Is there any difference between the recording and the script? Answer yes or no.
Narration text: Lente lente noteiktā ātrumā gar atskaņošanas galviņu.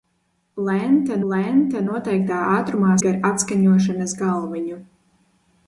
no